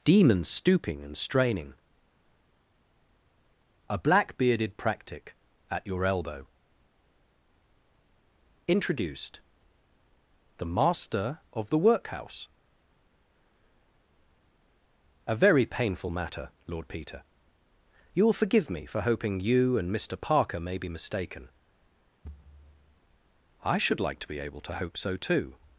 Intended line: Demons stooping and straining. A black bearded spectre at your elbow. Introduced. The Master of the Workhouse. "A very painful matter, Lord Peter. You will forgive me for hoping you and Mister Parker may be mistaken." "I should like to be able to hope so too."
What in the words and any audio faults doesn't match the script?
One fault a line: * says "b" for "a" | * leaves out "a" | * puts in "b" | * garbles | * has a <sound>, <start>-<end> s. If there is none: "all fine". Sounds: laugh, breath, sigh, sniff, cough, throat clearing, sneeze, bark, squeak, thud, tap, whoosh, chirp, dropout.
* says "practic" for "spectre"
* has a thud, 22.2-23.0 s